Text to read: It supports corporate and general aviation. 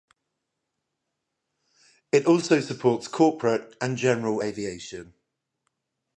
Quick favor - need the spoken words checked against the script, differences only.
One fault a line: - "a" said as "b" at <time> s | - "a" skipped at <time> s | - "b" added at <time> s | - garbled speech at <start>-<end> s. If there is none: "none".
- "also" added at 2.3 s